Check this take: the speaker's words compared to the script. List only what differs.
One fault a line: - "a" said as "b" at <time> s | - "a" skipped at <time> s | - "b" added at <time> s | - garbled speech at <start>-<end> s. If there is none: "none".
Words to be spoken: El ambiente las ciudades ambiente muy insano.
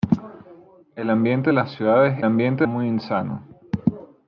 none